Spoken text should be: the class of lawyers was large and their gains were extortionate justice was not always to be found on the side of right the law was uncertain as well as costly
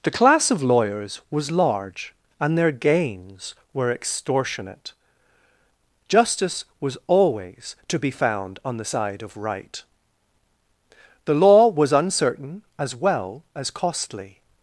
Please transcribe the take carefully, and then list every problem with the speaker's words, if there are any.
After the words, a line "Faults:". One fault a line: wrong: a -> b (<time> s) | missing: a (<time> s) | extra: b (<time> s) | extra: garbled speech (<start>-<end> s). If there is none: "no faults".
the class of lawyers was large and their gains were extortionate justice was always to be found on the side of right the law was uncertain as well as costly
Faults:
missing: not (7.0 s)